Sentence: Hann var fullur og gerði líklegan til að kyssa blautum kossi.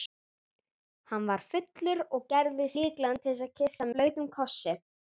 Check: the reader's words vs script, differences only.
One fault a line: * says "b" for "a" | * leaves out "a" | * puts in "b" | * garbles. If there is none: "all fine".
all fine